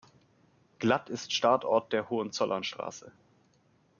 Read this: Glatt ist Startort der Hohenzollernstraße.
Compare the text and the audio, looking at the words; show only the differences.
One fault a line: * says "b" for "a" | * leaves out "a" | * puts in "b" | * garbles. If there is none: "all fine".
all fine